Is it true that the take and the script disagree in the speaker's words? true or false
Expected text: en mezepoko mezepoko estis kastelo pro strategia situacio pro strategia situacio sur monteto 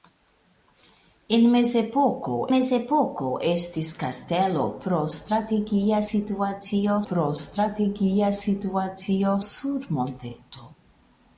false